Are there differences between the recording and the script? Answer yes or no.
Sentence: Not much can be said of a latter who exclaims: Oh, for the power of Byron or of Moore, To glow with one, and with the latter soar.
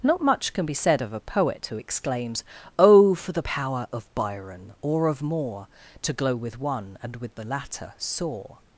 yes